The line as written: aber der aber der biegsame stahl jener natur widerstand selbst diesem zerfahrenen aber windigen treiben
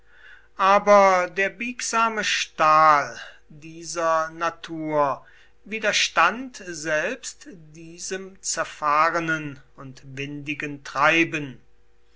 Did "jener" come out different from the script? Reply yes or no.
yes